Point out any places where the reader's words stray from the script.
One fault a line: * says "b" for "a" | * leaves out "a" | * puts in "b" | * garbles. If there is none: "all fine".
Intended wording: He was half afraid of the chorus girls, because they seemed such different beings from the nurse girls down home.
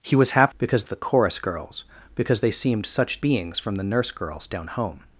* says "because" for "afraid"
* leaves out "different"